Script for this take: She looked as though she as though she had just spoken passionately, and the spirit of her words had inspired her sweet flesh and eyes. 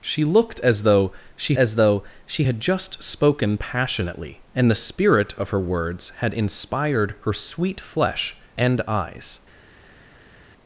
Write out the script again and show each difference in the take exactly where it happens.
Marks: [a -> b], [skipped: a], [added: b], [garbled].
She looked as though she as though she had just spoken passionately, and the spirit of her words had inspired her sweet flesh and eyes.